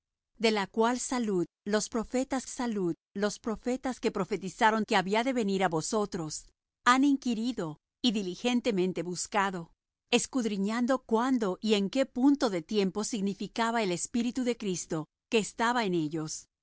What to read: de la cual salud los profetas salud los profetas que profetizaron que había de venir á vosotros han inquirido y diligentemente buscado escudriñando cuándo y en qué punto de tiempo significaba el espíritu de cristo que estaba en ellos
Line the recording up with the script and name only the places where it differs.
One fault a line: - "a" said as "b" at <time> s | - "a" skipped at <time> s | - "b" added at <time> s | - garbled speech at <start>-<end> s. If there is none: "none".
none